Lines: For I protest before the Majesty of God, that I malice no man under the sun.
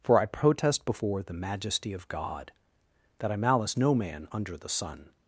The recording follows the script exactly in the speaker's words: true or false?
true